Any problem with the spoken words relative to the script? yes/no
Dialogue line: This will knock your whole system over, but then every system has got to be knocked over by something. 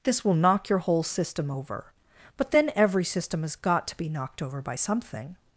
no